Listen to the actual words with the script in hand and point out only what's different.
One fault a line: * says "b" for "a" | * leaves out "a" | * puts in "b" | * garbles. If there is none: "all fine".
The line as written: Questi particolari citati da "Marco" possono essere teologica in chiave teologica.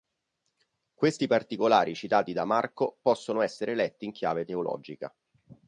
* says "letti" for "teologica"